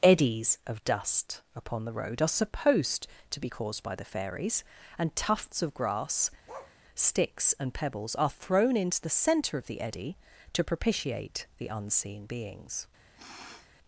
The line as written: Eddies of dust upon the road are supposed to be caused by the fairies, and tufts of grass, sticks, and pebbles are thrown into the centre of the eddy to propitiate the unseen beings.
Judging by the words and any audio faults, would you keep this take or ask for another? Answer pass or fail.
fail